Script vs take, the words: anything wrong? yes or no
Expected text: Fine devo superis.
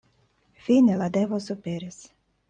yes